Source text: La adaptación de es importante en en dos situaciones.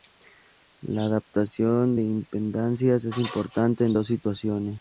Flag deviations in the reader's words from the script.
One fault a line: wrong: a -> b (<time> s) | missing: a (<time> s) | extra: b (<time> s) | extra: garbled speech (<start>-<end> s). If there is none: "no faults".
extra: impedancias (2.0 s)
missing: en (3.9 s)